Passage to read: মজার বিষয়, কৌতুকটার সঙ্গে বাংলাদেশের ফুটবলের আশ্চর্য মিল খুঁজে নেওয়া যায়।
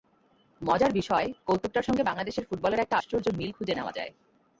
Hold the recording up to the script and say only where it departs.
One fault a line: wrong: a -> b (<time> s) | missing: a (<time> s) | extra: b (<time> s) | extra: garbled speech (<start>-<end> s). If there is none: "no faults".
extra: একটা (2.8 s)